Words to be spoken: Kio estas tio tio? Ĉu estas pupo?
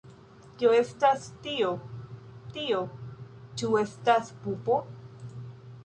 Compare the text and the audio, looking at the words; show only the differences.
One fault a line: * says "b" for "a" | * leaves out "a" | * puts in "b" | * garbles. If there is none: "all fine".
all fine